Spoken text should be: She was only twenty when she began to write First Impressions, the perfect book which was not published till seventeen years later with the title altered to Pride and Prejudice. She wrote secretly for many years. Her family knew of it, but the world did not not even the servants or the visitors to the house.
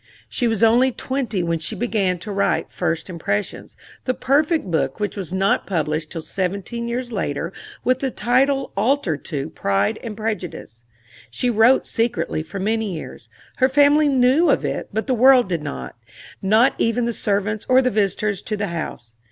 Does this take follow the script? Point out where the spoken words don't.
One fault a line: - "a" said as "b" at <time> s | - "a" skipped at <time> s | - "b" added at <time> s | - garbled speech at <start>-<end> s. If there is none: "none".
none